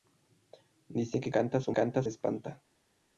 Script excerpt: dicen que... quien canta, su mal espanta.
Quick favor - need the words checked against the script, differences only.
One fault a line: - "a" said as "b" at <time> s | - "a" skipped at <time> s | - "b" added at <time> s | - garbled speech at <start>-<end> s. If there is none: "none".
- "quien" skipped at 1.3 s
- "mal" said as "canta" at 1.7 s